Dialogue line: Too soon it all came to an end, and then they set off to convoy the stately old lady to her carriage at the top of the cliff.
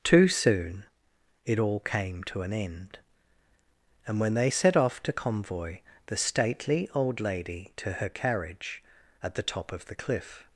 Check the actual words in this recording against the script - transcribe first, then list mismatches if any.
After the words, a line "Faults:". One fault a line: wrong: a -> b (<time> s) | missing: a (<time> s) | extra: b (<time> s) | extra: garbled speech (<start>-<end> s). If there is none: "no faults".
Too soon it all came to an end, and when they set off to convoy the stately old lady to her carriage at the top of the cliff.
Faults:
wrong: then -> when (4.2 s)